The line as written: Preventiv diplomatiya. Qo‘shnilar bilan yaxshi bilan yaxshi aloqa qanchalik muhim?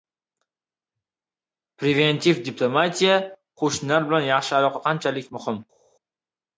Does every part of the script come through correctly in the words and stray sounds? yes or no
no